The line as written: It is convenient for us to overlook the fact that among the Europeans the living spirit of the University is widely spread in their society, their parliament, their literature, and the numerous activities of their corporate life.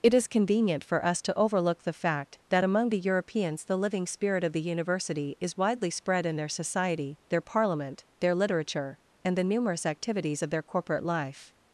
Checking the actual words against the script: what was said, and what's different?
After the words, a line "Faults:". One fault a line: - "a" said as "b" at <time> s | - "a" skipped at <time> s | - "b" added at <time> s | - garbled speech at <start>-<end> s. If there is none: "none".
It is convenient for us to overlook the fact that among the Europeans the living spirit of the University is widely spread in their society, their parliament, their literature, and the numerous activities of their corporate life.
Faults:
none